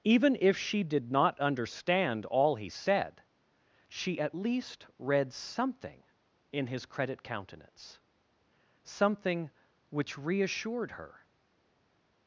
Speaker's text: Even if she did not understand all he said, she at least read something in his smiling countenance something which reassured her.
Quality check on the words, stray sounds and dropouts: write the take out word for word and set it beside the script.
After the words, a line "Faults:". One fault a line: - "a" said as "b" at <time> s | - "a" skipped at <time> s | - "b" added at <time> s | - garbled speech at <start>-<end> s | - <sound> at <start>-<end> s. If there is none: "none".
Even if she did not understand all he said, she at least read something in his credit countenance something which reassured her.
Faults:
- "smiling" said as "credit" at 6.9 s